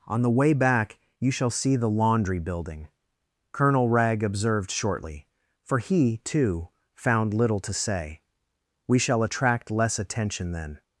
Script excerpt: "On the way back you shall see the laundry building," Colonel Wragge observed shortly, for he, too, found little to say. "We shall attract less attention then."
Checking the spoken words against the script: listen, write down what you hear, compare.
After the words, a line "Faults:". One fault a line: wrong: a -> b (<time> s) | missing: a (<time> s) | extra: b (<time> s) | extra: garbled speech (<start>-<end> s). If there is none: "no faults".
"On the way back you shall see the laundry building," Colonel Wragge observed shortly, for he, too, found little to say. "We shall attract less attention then."
Faults:
no faults